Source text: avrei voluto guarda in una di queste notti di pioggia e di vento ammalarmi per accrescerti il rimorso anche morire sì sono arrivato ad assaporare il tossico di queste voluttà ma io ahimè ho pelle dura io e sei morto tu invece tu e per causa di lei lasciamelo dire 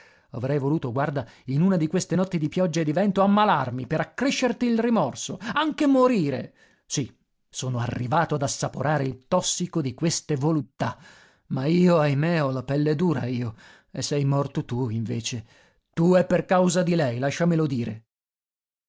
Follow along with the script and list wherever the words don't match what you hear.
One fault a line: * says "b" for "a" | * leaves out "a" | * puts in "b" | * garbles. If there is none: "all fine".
* puts in "la"